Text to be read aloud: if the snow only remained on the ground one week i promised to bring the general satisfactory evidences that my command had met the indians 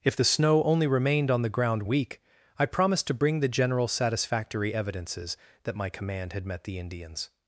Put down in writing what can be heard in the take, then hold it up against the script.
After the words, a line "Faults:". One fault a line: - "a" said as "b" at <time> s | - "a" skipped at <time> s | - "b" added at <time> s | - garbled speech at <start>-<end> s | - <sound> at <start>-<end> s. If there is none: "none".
if the snow only remained on the ground week i promised to bring the general satisfactory evidences that my command had met the indians
Faults:
- "one" skipped at 1.8 s